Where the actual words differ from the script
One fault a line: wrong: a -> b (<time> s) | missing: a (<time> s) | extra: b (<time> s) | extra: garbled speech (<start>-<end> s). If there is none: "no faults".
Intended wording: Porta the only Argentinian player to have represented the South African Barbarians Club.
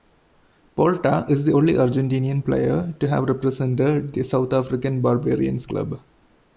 extra: is (1.3 s)